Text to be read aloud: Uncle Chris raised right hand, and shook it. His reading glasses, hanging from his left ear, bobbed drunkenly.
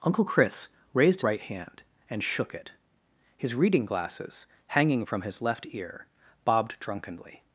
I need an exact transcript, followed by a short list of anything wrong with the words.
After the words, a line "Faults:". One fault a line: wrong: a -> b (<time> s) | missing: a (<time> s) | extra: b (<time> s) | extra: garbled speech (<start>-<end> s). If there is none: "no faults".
Uncle Chris raised right hand, and shook it. His reading glasses, hanging from his left ear, bobbed drunkenly.
Faults:
no faults